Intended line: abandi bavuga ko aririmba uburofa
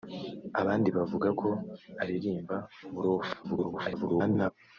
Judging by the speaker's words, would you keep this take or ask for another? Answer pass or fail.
fail